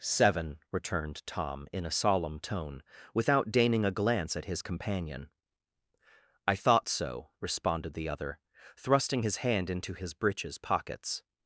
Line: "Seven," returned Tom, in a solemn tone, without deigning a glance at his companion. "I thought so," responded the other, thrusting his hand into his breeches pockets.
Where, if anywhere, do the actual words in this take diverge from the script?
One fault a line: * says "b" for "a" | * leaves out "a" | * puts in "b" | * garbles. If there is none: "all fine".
all fine